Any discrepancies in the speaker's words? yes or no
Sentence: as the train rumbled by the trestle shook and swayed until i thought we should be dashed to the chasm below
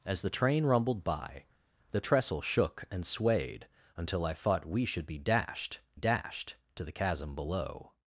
yes